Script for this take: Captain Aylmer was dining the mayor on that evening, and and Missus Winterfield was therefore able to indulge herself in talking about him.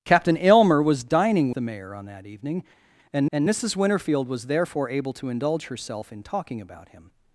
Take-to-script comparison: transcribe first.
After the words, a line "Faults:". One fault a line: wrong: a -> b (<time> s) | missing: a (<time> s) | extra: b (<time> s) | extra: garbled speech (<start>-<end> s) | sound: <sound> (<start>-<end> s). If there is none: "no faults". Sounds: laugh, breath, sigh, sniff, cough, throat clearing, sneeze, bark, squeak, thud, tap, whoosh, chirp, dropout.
Captain Aylmer was dining the mayor on that evening, and and Missus Winterfield was therefore able to indulge herself in talking about him.
Faults:
no faults